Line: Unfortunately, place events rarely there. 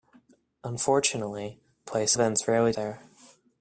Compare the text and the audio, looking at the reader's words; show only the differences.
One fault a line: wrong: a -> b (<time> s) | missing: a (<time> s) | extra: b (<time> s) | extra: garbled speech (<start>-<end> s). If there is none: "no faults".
no faults